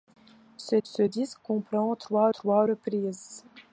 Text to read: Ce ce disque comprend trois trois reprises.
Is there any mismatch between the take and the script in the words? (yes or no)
no